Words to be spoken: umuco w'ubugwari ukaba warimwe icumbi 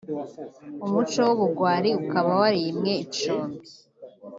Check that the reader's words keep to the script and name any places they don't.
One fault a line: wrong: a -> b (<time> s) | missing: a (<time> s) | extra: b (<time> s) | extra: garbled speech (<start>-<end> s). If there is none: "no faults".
no faults